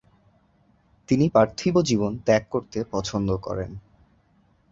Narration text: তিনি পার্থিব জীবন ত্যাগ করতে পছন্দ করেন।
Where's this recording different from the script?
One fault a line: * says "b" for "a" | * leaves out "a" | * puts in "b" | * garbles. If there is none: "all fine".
all fine